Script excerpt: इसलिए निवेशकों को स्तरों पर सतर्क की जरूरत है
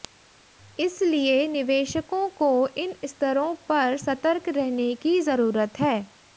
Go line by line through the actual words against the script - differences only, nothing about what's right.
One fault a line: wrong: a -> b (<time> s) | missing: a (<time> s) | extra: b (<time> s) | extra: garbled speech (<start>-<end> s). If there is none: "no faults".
extra: इन (2.8 s)
extra: रहने (4.5 s)